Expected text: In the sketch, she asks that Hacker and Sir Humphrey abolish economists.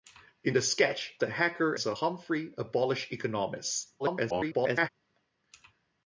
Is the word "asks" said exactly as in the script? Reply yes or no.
no